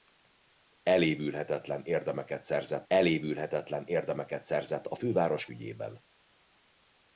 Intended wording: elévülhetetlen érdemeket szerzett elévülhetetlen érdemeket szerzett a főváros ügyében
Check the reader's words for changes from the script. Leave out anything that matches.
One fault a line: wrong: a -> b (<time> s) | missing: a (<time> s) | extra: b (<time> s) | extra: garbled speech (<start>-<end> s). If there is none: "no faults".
no faults